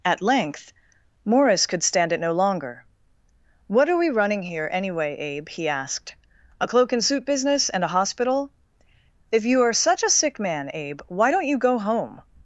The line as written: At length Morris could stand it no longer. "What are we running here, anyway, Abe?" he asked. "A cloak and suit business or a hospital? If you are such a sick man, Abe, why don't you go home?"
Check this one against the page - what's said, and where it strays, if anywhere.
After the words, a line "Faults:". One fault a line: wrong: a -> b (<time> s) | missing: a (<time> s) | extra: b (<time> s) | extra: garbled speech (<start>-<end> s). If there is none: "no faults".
At length Morris could stand it no longer. "What are we running here, anyway, Abe?" he asked. "A cloak and suit business and a hospital? If you are such a sick man, Abe, why don't you go home?"
Faults:
wrong: or -> and (7.7 s)